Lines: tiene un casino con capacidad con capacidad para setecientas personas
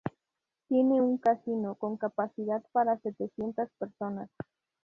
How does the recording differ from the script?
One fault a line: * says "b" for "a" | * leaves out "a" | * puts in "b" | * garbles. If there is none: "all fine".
* leaves out "con capacidad"